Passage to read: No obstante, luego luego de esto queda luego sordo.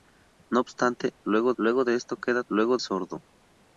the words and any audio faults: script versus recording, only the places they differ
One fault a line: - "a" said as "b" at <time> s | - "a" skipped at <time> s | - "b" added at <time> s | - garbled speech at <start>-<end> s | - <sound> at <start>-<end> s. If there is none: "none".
none